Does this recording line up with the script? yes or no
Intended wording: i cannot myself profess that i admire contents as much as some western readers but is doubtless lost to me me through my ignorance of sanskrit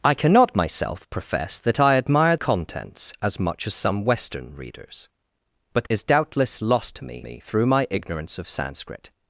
yes